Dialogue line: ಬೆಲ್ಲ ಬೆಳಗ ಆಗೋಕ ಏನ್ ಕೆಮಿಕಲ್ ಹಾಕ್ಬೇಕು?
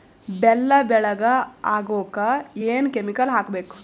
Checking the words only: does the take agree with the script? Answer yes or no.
yes